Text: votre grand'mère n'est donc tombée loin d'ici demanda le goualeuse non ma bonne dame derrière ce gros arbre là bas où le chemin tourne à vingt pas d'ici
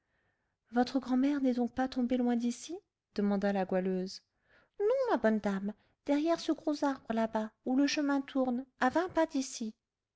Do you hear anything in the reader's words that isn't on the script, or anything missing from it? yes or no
yes